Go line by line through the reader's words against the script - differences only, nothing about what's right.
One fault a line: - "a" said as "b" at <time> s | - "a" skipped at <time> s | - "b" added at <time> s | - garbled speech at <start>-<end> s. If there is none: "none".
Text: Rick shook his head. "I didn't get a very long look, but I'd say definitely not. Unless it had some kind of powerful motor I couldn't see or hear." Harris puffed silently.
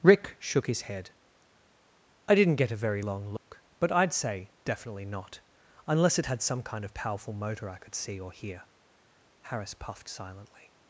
- "couldn't" said as "could" at 7.8 s